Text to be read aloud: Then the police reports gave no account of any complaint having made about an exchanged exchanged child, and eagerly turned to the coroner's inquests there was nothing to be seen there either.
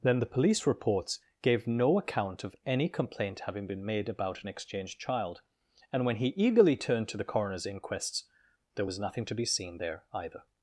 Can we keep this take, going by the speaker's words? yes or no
no